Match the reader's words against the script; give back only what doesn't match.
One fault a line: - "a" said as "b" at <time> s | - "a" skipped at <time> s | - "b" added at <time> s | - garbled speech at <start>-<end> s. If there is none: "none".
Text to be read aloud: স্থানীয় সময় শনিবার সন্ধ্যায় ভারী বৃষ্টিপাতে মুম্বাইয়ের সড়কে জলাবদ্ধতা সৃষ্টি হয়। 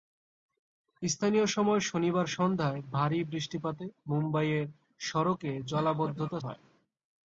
- "সৃষ্টি" skipped at 6.4 s